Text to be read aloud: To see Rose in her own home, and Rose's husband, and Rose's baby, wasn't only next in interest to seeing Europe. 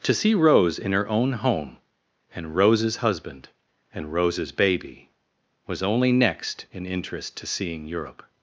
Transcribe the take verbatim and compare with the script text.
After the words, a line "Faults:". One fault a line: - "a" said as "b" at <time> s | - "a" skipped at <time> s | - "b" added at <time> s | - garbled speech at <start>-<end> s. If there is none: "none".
To see Rose in her own home, and Rose's husband, and Rose's baby, was only next in interest to seeing Europe.
Faults:
- "wasn't" said as "was" at 5.7 s